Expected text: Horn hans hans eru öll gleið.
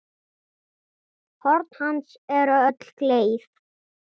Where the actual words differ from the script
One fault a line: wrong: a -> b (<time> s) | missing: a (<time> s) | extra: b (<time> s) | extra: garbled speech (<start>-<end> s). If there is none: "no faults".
missing: hans (2.1 s)